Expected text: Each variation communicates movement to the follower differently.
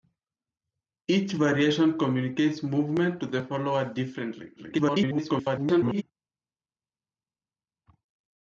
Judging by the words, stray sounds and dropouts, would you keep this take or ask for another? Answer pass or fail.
fail